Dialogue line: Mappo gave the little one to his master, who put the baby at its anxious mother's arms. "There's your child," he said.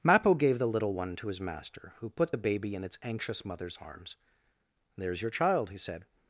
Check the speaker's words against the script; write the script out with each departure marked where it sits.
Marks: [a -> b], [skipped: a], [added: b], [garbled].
Mappo gave the little one to his master, who put the baby [at -> in] its anxious mother's arms. "There's your child," he said.